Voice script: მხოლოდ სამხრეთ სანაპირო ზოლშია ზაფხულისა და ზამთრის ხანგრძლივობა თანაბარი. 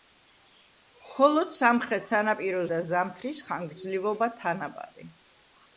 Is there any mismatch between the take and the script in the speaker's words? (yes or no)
yes